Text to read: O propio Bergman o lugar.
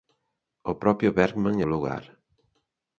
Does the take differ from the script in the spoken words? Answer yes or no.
no